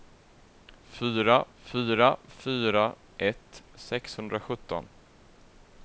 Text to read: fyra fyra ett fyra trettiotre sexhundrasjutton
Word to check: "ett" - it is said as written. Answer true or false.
false